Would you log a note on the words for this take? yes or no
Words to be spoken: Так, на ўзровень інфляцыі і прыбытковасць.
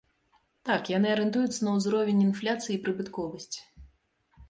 yes